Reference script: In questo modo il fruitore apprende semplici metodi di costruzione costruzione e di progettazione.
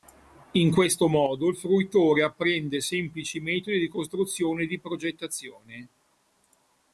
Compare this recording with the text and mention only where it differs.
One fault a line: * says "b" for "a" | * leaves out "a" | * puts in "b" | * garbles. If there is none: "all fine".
* leaves out "costruzione"